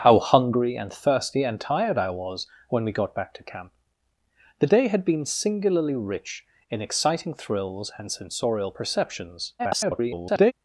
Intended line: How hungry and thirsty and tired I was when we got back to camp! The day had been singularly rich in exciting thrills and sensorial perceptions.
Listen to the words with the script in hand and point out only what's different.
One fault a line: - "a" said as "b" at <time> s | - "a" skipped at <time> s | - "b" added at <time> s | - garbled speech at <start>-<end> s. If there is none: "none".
- garbled speech at 9.6-10.5 s